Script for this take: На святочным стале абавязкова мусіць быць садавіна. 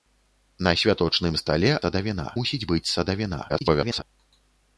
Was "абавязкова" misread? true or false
true